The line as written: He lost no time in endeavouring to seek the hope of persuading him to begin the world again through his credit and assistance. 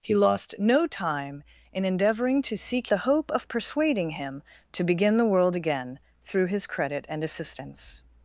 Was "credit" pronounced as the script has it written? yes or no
yes